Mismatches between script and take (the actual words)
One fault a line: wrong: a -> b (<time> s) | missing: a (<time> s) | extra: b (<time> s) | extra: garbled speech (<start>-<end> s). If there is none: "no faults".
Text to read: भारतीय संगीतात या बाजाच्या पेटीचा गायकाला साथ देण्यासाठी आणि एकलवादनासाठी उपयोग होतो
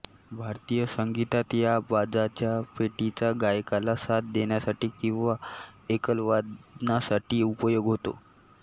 wrong: आणि -> किंवा (5.0 s)